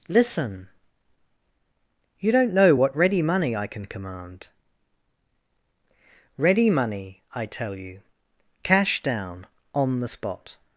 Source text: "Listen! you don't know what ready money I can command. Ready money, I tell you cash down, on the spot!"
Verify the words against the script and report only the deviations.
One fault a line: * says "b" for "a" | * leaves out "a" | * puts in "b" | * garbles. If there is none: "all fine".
all fine